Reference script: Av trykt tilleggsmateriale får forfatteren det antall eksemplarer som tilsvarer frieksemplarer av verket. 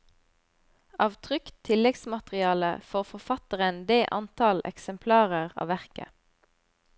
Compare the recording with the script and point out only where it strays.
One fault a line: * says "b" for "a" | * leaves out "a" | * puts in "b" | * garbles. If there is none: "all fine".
* leaves out "som tilsvarer frieksemplarer"